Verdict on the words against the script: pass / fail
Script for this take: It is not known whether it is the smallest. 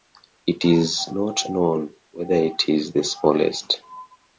pass